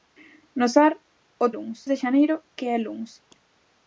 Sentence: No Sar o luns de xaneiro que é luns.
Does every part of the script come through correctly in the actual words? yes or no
yes